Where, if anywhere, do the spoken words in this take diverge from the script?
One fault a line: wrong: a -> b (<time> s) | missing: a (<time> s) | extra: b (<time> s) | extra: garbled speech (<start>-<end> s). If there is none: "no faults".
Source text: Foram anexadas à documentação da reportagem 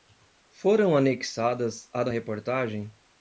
missing: documentação (2.0 s)